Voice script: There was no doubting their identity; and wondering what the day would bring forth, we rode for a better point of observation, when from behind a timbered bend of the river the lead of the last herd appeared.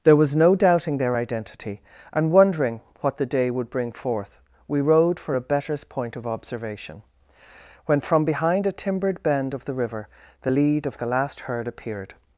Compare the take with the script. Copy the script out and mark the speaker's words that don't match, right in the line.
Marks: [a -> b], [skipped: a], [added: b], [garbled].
There was no doubting their identity; and wondering what the day would bring forth, we rode for a [better -> betters] point of observation, when from behind a timbered bend of the river the lead of the last herd appeared.